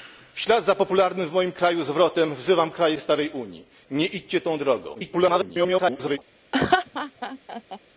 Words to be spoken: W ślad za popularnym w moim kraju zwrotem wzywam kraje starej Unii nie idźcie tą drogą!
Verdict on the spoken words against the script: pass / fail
fail